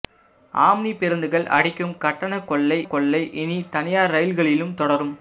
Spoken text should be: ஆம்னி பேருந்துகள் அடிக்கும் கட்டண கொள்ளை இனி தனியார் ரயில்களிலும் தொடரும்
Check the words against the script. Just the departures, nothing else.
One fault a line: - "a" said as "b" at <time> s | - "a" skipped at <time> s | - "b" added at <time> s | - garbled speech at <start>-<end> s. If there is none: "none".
- "கொள்ளை" added at 2.9 s